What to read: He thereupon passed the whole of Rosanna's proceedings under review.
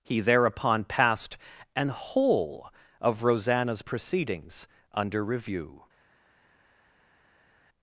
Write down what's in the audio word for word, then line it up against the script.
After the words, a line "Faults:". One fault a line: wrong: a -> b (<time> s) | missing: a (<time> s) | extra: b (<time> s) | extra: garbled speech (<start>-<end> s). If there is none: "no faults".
He thereupon passed an whole of Rosanna's proceedings under review.
Faults:
wrong: the -> an (1.8 s)